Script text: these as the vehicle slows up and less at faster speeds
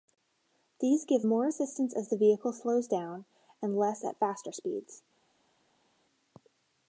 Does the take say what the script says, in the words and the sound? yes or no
no